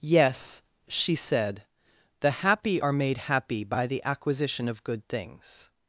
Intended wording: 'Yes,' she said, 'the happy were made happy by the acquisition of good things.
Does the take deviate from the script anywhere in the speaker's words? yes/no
yes